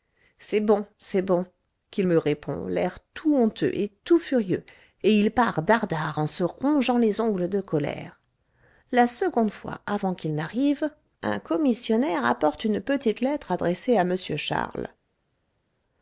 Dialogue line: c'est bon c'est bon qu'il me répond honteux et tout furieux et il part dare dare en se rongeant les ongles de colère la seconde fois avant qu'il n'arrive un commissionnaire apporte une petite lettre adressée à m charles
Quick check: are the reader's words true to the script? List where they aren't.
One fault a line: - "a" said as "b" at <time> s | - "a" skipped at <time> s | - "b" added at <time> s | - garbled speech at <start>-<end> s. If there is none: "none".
- "l'air tout" added at 2.7 s